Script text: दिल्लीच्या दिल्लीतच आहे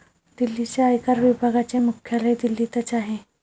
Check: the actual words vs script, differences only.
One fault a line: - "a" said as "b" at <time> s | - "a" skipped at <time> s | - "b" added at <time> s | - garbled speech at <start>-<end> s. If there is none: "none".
- "आयकर विभागाचे मुख्यालय" added at 0.8 s